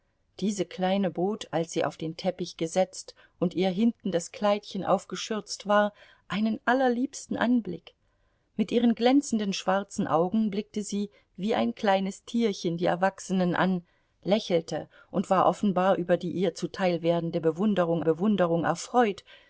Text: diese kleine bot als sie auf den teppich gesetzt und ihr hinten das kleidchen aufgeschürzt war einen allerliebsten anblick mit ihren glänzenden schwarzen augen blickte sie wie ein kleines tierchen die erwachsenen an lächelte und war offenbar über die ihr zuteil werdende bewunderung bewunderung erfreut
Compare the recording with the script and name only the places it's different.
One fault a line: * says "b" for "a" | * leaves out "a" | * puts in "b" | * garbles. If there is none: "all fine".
all fine